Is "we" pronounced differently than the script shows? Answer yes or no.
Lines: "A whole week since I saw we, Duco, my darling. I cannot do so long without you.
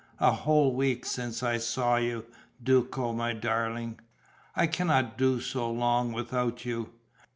yes